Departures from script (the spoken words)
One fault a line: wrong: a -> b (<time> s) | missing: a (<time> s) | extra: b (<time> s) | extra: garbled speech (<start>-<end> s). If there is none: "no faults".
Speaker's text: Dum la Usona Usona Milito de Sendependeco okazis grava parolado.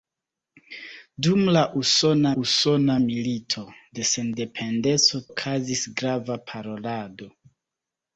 no faults